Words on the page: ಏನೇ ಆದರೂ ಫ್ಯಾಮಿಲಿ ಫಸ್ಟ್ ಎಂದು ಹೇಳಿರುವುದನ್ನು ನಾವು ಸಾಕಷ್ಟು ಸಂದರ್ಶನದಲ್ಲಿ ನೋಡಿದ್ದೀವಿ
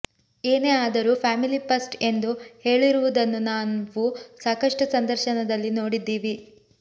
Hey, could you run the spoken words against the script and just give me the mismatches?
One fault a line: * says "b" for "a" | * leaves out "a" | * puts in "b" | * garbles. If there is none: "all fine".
all fine